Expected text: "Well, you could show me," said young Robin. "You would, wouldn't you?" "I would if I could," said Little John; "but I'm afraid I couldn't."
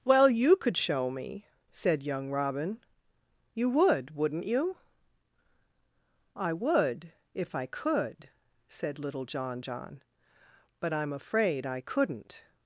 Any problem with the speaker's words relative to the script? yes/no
yes